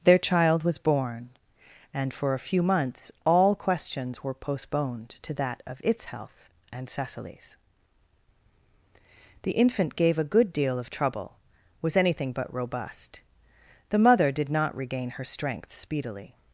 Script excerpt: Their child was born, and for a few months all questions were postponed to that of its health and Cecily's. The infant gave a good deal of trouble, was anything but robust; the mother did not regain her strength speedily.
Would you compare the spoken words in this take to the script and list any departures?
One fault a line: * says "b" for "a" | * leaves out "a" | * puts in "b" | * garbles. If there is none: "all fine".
all fine